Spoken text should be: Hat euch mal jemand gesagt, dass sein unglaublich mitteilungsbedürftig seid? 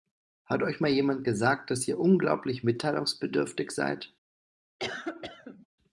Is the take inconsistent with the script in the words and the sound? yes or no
yes